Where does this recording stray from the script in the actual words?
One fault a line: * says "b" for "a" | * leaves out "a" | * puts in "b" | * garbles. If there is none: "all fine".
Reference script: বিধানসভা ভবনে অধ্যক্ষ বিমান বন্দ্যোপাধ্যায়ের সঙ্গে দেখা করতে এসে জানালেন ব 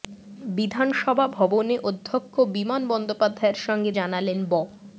* leaves out "দেখা করতে এসে"